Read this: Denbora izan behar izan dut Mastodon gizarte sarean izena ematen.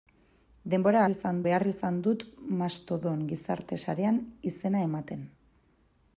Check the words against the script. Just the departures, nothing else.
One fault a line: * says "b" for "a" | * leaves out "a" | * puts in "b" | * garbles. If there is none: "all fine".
all fine